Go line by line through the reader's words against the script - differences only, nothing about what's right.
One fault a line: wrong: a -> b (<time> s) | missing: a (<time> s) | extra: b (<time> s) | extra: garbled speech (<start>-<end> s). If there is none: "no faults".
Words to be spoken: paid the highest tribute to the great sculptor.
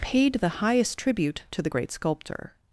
no faults